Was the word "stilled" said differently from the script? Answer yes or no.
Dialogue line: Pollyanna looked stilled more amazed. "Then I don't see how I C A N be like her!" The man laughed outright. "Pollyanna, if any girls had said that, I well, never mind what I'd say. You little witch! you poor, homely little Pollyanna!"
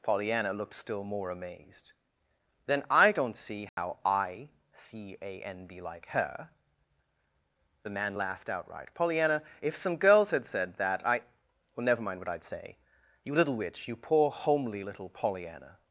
yes